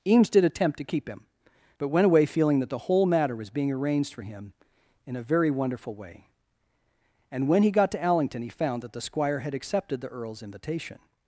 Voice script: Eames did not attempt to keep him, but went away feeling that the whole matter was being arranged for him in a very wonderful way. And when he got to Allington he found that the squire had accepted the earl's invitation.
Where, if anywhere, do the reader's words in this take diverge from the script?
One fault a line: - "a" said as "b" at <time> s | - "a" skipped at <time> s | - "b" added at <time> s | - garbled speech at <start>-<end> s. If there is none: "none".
- "not" skipped at 0.4 s